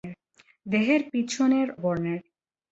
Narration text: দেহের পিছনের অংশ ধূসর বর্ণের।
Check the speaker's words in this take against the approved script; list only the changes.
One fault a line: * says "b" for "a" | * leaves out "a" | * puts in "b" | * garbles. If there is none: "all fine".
* leaves out "অংশ ধূসর"